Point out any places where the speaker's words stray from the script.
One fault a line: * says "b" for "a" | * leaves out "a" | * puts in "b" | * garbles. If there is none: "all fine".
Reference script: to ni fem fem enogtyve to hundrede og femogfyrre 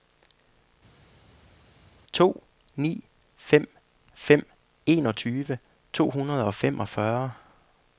all fine